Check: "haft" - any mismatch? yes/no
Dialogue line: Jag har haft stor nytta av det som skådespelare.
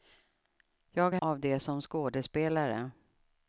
yes